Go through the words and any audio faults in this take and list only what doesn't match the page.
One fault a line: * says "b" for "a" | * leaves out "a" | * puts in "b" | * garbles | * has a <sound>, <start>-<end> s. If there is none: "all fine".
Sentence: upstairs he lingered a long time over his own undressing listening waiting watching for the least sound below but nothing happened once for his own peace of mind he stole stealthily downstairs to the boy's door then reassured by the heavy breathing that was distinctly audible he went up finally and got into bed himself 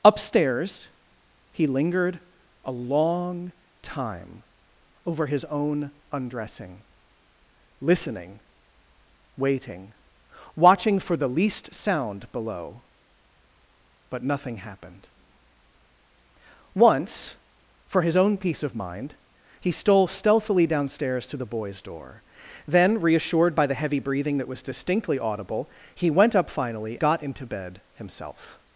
* leaves out "and"